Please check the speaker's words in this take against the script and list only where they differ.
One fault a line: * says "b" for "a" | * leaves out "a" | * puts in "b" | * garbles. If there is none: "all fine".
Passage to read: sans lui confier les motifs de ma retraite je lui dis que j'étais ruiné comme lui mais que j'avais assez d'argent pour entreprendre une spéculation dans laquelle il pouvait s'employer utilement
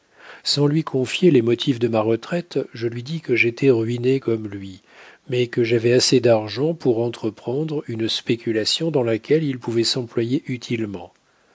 all fine